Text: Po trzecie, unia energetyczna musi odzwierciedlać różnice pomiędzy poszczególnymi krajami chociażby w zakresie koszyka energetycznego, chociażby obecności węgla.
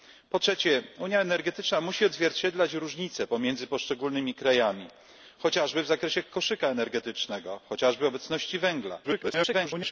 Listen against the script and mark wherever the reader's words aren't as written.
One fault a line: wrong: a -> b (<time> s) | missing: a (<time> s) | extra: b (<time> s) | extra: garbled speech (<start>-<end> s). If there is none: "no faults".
extra: garbled speech (9.0-9.9 s)